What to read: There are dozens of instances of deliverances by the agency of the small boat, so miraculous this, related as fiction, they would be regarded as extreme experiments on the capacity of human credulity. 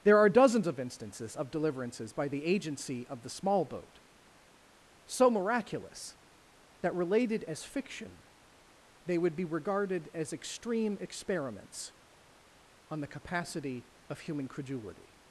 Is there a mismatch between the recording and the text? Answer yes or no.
yes